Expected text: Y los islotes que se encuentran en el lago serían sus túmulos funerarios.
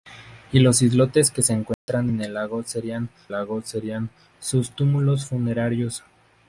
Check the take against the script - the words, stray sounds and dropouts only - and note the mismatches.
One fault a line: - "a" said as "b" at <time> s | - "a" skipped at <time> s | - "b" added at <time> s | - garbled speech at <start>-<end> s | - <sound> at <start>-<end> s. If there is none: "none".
- dropout at 1.7-1.9 s
- "lago serían" added at 3.3 s